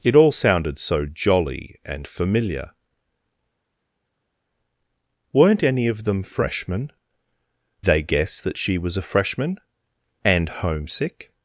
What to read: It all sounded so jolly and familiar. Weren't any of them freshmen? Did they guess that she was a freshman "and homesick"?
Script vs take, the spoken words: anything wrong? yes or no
yes